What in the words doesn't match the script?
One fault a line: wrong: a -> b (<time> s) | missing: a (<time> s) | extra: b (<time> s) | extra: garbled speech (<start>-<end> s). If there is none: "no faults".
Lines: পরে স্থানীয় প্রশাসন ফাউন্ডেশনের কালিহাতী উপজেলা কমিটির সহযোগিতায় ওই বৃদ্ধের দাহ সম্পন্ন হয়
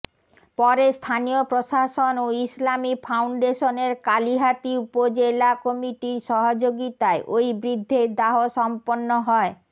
extra: ও ইসলামী (2.2 s)